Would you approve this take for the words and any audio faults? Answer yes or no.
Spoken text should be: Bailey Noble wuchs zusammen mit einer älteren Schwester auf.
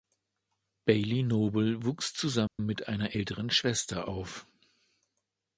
no